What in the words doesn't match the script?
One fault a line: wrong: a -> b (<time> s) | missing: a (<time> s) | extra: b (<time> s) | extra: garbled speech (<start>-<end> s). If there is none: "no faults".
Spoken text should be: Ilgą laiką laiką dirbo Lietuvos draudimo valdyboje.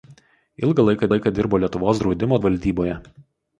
no faults